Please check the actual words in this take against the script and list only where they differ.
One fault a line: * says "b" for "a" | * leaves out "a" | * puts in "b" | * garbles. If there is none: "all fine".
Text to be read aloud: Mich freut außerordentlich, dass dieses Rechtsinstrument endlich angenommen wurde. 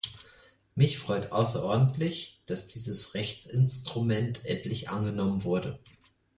all fine